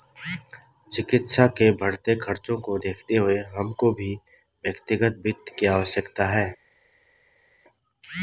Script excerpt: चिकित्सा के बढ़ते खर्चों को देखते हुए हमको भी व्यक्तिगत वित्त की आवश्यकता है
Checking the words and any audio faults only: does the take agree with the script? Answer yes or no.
yes